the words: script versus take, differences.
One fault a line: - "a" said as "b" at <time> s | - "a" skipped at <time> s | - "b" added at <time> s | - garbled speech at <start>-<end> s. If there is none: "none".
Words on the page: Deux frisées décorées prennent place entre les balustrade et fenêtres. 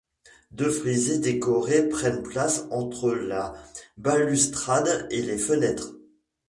- "les" said as "la" at 3.1 s
- "les" added at 5.2 s